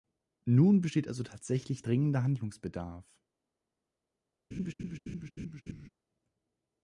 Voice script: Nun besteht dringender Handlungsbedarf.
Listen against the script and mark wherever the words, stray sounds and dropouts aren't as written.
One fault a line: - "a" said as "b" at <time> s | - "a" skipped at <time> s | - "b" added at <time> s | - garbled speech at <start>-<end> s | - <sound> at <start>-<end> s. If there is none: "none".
- "also tatsächlich" added at 1.1 s
- laugh at 4.5-5.9 s